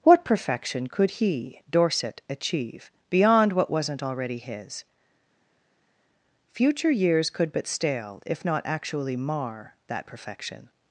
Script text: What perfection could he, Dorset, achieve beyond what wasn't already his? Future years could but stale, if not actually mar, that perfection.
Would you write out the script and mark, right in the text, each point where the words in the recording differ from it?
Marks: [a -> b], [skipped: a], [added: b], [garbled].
What perfection could he, Dorset, achieve beyond what wasn't already his? Future years could but stale, if not actually mar, that perfection.